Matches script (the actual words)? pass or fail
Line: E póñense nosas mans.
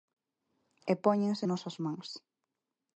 pass